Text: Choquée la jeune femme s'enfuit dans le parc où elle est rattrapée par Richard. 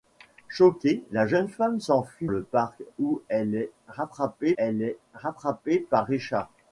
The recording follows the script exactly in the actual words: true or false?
false